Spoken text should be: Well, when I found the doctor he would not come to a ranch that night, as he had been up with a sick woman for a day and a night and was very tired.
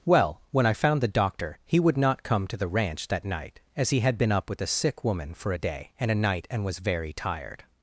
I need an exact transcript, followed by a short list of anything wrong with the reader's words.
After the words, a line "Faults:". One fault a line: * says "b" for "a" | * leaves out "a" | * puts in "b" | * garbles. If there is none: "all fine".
Well, when I found the doctor he would not come to the ranch that night, as he had been up with a sick woman for a day and a night and was very tired.
Faults:
* says "the" for "a"